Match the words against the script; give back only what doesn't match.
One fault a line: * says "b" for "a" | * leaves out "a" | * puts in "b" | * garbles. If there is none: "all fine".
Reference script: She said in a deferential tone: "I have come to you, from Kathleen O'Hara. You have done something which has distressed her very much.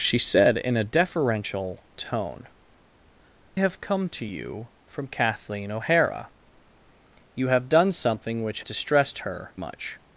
* leaves out "I"
* leaves out "has"
* leaves out "very"